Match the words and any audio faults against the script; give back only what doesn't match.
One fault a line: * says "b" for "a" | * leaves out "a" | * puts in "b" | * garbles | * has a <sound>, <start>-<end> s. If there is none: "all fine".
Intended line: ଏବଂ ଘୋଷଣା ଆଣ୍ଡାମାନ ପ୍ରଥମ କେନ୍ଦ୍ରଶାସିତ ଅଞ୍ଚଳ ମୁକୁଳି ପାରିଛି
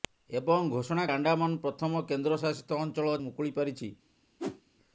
* has a whoosh, 4.4-4.6 s